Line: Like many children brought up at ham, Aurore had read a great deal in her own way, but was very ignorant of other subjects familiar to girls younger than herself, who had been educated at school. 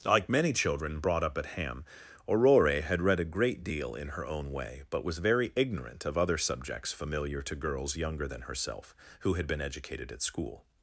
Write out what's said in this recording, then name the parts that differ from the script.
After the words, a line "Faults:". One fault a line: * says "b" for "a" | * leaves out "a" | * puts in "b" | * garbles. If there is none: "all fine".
Like many children brought up at ham, Aurore had read a great deal in her own way, but was very ignorant of other subjects familiar to girls younger than herself, who had been educated at school.
Faults:
all fine